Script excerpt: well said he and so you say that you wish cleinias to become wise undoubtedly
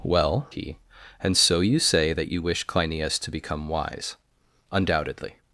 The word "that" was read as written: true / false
true